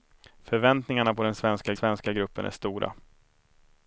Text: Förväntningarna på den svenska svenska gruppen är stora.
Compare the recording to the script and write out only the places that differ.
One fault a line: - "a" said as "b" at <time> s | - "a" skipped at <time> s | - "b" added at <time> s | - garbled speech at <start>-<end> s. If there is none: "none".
none